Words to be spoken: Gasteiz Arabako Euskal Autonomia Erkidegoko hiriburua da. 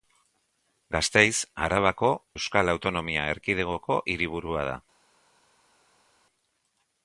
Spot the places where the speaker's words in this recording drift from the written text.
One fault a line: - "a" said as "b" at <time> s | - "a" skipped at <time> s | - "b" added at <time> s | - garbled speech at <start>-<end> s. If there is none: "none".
none